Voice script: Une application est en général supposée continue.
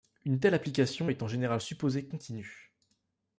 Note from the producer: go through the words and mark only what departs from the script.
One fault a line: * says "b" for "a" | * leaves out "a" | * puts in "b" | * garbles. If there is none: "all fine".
* puts in "telle"